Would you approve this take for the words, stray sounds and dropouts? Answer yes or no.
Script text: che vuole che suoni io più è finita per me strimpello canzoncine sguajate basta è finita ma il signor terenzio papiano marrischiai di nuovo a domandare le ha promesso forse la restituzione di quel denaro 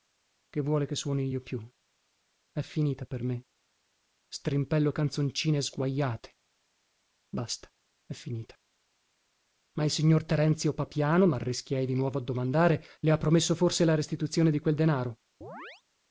no